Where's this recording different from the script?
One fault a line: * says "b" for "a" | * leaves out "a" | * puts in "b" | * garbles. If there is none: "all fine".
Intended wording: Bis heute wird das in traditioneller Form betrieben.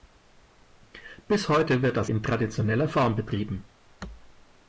all fine